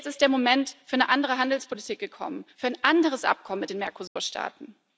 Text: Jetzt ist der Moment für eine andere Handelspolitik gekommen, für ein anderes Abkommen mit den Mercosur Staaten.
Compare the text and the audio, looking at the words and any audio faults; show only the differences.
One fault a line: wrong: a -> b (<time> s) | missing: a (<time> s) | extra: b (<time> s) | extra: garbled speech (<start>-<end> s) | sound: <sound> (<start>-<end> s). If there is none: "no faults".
sound: dropout (4.1-4.2 s)